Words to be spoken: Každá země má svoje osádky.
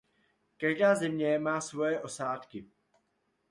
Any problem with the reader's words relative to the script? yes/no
no